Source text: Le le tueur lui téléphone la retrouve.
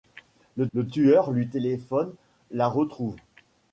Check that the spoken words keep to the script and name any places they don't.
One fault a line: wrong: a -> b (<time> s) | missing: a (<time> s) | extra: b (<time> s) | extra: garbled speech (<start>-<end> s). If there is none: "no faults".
no faults